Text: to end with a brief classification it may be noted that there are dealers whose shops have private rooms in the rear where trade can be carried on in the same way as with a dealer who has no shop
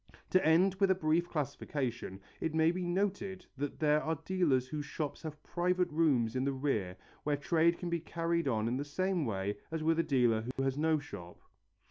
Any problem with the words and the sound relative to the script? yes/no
yes